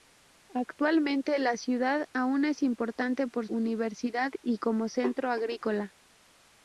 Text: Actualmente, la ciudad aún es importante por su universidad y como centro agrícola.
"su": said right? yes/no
no